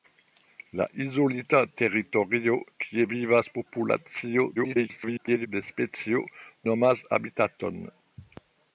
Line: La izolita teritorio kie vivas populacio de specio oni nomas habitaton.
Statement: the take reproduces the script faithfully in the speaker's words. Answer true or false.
false